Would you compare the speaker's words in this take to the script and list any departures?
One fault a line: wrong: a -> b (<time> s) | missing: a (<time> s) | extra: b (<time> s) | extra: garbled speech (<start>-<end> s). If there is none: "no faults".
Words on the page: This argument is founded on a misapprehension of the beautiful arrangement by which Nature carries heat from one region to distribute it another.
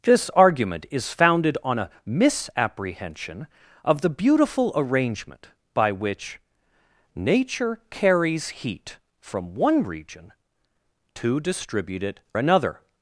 no faults